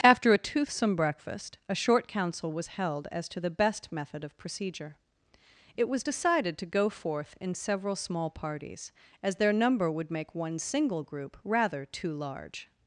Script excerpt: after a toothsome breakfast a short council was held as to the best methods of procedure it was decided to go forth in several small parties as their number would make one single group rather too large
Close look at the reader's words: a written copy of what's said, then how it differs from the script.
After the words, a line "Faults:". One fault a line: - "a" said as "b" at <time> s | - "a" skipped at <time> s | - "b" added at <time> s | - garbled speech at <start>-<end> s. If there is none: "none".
after a toothsome breakfast a short council was held as to the best method of procedure it was decided to go forth in several small parties as their number would make one single group rather too large
Faults:
- "methods" said as "method" at 3.9 s